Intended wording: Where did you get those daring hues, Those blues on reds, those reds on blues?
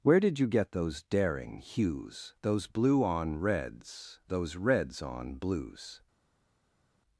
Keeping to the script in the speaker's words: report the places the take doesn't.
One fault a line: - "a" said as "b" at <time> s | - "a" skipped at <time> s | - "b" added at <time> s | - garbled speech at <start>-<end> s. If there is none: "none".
- "blues" said as "blue" at 2.6 s